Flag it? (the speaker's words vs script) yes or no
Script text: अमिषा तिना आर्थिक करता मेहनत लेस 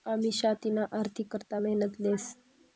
no